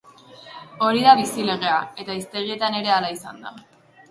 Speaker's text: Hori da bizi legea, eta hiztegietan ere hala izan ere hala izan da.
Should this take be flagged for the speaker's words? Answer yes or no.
yes